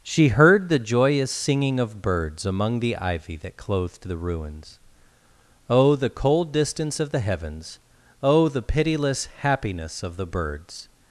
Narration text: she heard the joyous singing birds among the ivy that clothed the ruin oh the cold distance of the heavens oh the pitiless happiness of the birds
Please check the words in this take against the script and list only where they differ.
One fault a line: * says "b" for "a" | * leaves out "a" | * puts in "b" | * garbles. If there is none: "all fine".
* puts in "of"
* says "ruins" for "ruin"